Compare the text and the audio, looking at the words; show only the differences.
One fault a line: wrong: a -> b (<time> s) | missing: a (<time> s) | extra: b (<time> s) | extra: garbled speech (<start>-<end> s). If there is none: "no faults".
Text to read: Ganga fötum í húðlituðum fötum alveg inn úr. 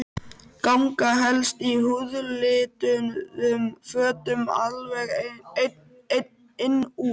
wrong: fötum -> helst (1.2 s)